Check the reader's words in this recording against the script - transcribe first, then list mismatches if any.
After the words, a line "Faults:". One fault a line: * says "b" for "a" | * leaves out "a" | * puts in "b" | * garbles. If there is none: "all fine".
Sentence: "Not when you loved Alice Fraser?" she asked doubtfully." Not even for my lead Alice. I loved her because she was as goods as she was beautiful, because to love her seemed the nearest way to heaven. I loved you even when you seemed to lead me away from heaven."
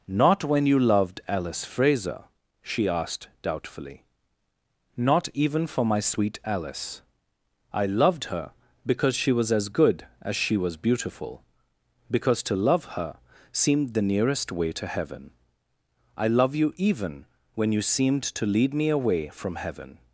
"Not when you loved Alice Fraser?" she asked doubtfully." Not even for my sweet Alice. I loved her because she was as good as she was beautiful, because to love her seemed the nearest way to heaven. I love you even when you seemed to lead me away from heaven."
Faults:
* says "sweet" for "lead"
* says "good" for "goods"
* says "love" for "loved"